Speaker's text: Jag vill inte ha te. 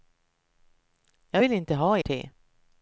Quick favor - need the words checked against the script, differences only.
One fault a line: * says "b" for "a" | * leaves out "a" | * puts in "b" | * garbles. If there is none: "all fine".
all fine